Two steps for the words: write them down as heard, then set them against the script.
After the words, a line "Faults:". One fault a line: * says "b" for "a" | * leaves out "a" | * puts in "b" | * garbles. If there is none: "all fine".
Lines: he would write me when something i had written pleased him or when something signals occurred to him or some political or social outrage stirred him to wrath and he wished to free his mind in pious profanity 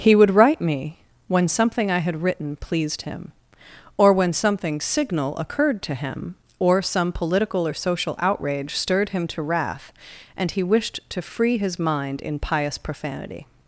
he would write me when something i had written pleased him or when something signal occurred to him or some political or social outrage stirred him to wrath and he wished to free his mind in pious profanity
Faults:
* says "signal" for "signals"